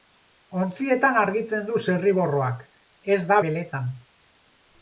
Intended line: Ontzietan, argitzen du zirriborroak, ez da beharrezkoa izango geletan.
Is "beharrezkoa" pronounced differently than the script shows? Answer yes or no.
yes